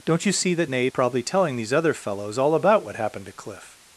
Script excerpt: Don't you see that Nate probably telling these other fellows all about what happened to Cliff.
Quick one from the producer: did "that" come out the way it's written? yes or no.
yes